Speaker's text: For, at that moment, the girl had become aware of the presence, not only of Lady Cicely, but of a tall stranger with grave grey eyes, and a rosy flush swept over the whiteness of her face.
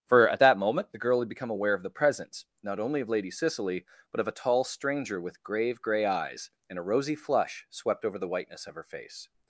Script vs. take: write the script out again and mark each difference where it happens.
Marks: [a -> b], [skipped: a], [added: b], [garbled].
For, at that moment, the girl had become aware of the presence, not only of Lady Cicely, but of a tall stranger with grave grey eyes, and a rosy flush swept over the whiteness of her face.